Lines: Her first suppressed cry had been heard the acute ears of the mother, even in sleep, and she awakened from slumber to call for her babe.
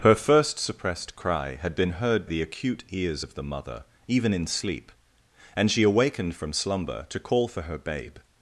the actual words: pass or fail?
pass